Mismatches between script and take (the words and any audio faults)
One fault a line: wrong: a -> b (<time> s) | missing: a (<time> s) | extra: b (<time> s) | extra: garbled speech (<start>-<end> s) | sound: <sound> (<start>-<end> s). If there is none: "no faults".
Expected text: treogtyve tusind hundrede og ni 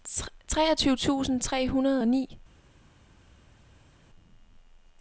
extra: tre (1.4 s)